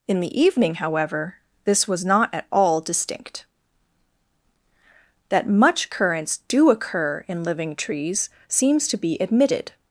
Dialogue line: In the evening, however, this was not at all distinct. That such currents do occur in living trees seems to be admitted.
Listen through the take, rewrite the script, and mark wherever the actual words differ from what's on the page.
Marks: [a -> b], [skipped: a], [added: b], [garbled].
In the evening, however, this was not at all distinct. That [such -> much] currents do occur in living trees seems to be admitted.